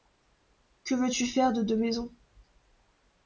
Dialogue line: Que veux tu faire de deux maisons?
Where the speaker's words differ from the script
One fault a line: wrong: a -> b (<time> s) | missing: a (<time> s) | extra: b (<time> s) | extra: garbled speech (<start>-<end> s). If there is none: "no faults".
no faults